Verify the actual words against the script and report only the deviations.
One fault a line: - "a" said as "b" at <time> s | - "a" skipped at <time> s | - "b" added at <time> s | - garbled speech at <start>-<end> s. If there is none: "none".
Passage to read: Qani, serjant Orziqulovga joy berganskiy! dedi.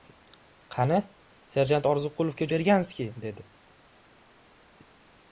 - "joy" skipped at 2.5 s